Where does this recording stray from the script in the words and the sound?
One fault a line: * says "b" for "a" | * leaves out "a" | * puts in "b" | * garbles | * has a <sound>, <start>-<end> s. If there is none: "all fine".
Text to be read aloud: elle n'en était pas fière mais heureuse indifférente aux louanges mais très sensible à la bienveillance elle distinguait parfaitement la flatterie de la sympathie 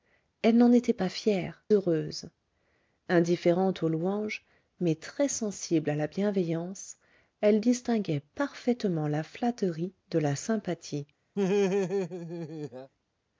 * leaves out "mais"
* has a laugh, 11.4-12.9 s